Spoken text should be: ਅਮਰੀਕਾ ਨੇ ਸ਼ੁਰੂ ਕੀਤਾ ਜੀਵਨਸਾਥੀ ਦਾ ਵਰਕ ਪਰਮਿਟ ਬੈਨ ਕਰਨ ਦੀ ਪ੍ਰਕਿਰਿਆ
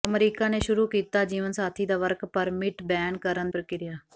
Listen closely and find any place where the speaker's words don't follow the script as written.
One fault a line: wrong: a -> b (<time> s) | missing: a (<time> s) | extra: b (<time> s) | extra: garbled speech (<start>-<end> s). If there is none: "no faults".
missing: ਦੀ (3.5 s)